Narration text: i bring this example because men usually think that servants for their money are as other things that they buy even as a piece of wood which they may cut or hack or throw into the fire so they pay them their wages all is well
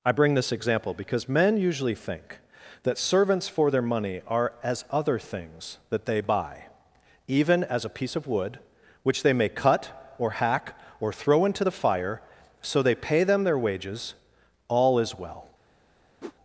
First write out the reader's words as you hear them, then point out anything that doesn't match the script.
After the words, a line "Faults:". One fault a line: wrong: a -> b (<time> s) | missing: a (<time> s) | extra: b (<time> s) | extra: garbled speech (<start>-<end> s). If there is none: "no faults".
i bring this example because men usually think that servants for their money are as other things that they buy even as a piece of wood which they may cut or hack or throw into the fire so they pay them their wages all is well
Faults:
no faults